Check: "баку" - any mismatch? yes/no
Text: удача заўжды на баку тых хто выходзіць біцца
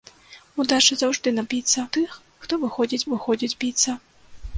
yes